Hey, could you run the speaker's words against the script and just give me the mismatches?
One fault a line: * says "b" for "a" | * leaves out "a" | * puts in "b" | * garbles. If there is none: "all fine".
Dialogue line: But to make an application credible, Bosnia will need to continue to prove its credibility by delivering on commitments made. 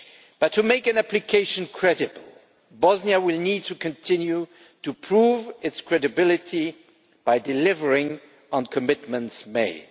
all fine